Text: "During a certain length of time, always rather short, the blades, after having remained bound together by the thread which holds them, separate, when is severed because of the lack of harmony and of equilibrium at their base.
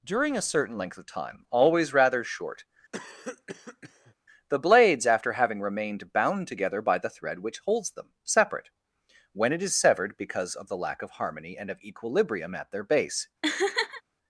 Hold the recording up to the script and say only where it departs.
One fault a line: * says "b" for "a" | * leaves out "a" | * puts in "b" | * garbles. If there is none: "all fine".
* puts in "it"